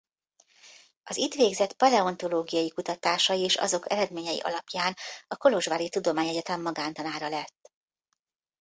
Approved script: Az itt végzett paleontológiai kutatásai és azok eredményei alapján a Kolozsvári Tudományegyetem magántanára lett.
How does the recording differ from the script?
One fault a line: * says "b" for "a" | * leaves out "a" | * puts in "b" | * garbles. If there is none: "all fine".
all fine